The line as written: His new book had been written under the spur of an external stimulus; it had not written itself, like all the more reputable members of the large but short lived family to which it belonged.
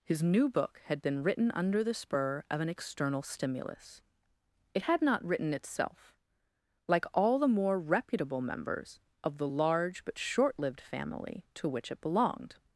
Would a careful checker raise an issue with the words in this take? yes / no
no